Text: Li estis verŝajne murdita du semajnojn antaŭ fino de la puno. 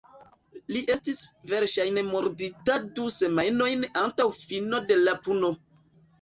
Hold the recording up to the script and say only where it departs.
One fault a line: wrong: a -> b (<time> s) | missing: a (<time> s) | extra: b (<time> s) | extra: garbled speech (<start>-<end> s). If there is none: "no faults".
no faults